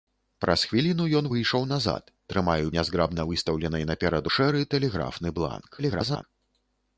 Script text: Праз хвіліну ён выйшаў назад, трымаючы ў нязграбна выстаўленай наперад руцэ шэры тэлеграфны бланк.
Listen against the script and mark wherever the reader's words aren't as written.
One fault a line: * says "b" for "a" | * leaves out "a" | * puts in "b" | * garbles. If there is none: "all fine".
* leaves out "ў"
* leaves out "руцэ"
* garbles